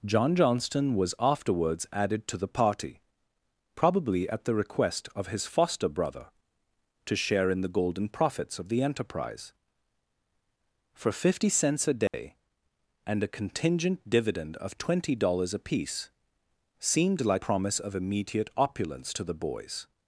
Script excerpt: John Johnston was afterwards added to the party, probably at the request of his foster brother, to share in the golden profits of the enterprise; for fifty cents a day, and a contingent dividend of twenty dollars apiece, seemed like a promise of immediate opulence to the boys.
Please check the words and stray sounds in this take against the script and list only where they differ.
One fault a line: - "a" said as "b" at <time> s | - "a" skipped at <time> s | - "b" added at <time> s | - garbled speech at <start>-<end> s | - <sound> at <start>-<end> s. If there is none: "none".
- dropout at 12.1-12.1 s
- "a" skipped at 17.4 s